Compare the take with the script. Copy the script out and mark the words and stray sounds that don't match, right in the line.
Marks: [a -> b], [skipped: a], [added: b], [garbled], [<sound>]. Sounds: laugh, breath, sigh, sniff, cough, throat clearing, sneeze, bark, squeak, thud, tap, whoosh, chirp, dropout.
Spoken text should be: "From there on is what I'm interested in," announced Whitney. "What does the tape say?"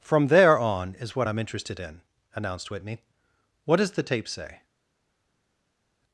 "From there on is what I'm interested in," announced Whitney. "What does the tape say?"